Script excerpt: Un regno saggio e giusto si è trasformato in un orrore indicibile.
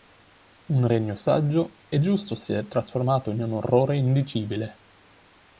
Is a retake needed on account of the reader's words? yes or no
no